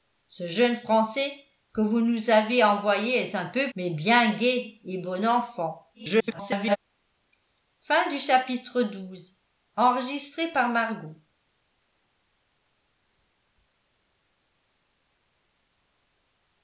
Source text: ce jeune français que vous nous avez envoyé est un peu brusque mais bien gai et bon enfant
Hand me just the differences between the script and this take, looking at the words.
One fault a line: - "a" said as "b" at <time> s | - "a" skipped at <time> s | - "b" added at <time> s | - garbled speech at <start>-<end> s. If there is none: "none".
- "brusque" skipped at 3.7 s
- garbled speech at 5.9-6.8 s